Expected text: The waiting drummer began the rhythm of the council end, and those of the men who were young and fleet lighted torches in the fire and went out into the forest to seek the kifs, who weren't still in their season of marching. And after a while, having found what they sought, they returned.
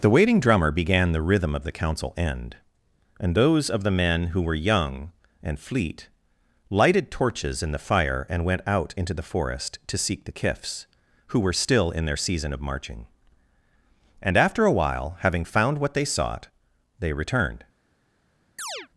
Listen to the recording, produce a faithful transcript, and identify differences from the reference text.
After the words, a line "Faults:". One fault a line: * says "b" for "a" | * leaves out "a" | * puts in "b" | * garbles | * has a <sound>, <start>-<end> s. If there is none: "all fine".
The waiting drummer began the rhythm of the council end, and those of the men who were young and fleet lighted torches in the fire and went out into the forest to seek the kifs, who were still in their season of marching. And after a while, having found what they sought, they returned.
Faults:
* says "were" for "weren't"
* has a chirp, 18.6-18.9 s